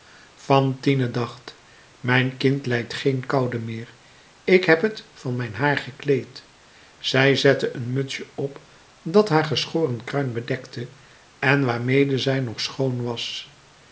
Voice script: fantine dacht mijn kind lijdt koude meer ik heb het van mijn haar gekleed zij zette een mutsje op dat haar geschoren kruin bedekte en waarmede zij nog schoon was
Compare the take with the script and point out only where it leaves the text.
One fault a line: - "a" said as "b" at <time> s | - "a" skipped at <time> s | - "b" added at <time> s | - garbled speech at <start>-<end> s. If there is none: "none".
- "geen" added at 2.9 s